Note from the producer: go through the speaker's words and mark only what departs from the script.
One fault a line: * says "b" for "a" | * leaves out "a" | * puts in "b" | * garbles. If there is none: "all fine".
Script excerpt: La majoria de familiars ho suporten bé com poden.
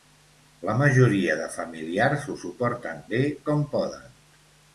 all fine